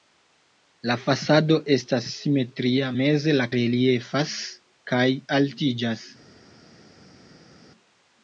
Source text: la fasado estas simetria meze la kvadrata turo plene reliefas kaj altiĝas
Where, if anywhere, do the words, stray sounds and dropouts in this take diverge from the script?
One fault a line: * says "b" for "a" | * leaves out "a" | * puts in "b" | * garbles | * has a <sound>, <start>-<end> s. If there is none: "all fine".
* leaves out "kvadrata turo plene"